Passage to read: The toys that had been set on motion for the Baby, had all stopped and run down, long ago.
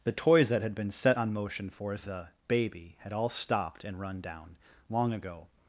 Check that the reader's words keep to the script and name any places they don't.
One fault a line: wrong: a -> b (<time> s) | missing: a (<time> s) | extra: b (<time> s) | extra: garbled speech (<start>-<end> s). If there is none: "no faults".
no faults